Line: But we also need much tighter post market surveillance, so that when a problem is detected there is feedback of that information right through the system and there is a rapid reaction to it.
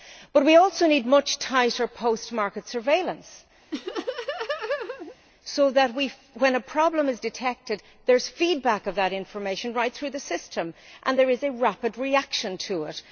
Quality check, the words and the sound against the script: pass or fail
fail